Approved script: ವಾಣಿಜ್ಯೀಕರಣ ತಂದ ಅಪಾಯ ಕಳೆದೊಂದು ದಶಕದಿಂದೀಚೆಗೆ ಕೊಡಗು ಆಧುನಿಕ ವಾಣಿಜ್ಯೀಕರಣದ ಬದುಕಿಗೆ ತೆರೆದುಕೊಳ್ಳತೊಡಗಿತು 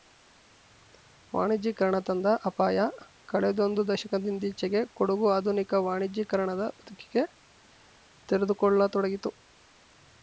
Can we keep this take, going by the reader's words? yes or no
yes